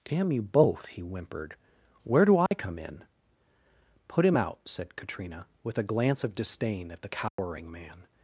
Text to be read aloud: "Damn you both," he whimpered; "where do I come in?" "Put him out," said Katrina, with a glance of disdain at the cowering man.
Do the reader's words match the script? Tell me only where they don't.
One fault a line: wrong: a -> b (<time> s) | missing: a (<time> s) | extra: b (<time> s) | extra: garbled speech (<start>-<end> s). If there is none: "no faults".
no faults